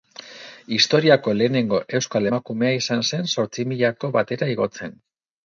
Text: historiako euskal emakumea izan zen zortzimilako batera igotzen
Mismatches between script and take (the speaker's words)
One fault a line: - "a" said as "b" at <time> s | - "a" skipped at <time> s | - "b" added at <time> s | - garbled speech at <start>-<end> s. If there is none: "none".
- "lehenengo" added at 1.4 s